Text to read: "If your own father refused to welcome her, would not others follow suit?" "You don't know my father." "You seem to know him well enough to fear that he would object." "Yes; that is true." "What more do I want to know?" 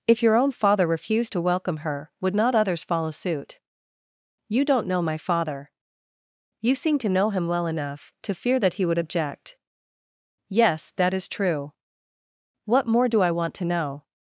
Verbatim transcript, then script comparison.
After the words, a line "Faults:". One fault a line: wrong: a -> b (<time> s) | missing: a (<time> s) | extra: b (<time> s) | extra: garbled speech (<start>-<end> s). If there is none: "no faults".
"If your own father refused to welcome her, would not others follow suit?" "You don't know my father." "You seem to know him well enough to fear that he would object." "Yes; that is true." "What more do I want to know?"
Faults:
no faults